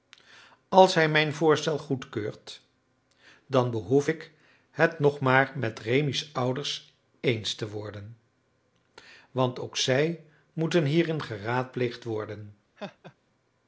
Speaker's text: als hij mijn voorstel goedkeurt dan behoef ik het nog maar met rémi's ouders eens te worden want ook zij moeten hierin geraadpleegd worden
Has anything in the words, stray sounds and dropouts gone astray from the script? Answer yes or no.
yes